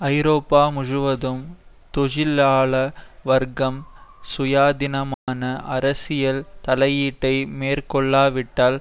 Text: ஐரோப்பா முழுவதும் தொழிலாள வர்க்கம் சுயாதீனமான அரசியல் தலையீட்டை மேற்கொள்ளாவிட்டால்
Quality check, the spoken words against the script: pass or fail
pass